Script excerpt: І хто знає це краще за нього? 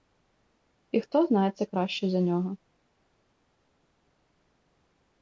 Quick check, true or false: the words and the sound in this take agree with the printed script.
true